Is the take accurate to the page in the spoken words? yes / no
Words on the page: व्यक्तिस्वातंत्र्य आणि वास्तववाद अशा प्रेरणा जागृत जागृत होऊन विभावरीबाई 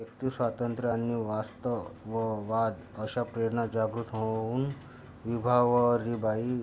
no